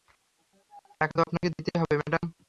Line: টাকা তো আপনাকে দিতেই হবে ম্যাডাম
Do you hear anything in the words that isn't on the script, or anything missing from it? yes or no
no